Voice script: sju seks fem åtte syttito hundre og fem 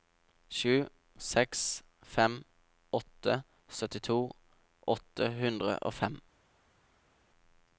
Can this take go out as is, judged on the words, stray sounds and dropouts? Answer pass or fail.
fail